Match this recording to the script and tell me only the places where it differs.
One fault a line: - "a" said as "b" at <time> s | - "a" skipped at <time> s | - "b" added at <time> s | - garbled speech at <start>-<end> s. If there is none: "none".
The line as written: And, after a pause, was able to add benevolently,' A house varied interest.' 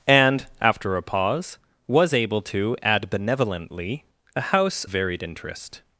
none